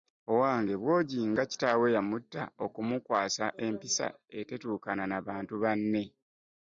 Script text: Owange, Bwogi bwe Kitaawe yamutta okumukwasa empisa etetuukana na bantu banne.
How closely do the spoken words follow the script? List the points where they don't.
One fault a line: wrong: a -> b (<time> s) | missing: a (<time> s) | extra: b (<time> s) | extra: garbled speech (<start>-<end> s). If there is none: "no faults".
wrong: bwe -> nga (1.3 s)